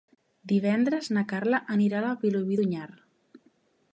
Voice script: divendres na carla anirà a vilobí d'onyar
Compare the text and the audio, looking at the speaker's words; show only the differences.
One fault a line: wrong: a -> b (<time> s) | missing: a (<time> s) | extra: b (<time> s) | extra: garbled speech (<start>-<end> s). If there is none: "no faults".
no faults